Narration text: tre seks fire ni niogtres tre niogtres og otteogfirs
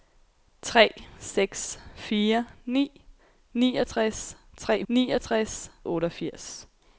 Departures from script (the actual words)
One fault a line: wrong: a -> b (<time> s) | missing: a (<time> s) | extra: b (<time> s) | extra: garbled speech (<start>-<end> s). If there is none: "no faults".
no faults